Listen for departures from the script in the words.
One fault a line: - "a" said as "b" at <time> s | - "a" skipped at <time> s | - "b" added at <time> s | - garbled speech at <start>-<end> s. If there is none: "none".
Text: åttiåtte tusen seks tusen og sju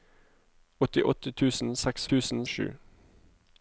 none